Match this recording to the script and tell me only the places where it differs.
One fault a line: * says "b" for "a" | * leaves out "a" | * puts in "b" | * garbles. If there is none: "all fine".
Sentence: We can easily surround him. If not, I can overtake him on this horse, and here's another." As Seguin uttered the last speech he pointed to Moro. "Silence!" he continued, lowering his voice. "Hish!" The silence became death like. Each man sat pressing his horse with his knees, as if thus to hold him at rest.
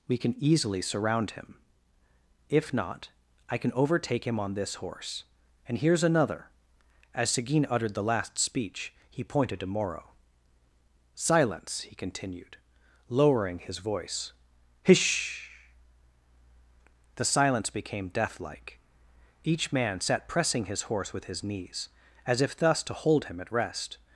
all fine